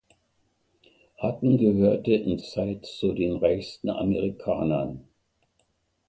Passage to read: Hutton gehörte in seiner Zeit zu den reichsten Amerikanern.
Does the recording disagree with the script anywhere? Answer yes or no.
yes